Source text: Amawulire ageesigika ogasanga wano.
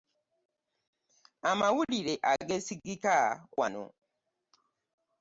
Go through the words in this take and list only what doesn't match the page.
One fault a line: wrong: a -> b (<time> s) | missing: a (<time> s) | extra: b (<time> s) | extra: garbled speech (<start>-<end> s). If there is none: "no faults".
missing: ogasanga (3.1 s)